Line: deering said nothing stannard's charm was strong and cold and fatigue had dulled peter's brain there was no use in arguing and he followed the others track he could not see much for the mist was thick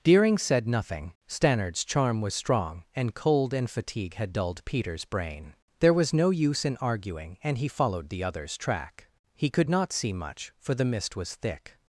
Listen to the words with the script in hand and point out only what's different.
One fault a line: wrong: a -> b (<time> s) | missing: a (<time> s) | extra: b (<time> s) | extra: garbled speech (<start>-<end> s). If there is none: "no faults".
no faults